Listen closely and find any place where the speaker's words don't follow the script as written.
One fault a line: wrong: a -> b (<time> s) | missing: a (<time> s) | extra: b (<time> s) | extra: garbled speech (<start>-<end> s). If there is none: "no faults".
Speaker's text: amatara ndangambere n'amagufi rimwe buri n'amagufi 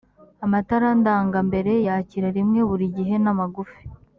wrong: n'amagufi -> yakira (1.9 s)
extra: gihe (3.0 s)